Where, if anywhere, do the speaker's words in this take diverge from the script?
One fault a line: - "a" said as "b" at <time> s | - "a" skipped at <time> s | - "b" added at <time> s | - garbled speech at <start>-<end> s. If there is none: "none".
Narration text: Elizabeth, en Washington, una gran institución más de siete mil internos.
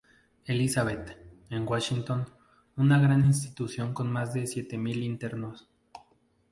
- "con" added at 3.9 s